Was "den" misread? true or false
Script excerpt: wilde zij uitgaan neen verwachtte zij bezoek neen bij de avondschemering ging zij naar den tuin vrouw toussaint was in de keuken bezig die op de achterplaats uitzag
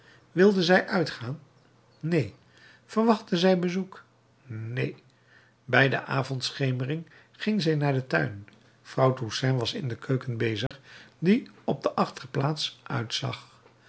false